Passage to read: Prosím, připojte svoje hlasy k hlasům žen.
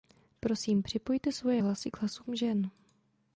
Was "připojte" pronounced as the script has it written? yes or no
yes